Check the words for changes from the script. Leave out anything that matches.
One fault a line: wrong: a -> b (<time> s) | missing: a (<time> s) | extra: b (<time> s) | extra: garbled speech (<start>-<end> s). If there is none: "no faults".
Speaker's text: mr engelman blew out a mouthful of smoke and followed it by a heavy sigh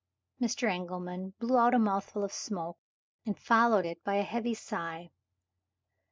no faults